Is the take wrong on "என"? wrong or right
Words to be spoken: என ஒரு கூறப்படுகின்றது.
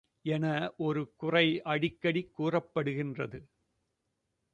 right